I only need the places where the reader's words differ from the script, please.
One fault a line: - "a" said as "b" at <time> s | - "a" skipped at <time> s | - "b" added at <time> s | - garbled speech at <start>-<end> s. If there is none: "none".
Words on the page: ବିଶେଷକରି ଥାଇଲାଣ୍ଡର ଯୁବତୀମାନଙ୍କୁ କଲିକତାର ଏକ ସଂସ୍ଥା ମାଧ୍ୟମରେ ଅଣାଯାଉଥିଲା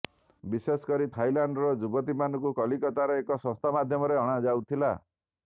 none